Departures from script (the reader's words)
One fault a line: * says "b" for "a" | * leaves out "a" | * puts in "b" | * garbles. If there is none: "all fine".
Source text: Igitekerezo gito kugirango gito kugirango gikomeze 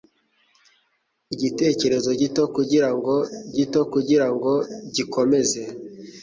all fine